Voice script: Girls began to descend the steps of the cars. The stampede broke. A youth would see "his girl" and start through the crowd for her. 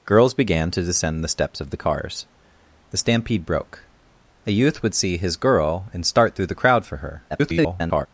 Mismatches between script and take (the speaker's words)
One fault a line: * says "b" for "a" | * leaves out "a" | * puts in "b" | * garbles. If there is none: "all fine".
* garbles